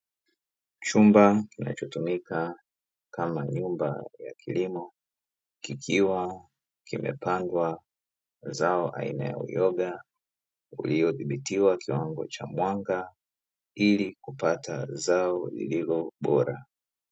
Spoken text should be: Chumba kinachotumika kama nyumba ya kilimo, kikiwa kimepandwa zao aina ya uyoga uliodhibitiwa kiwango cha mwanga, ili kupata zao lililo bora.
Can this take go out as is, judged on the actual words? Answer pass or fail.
pass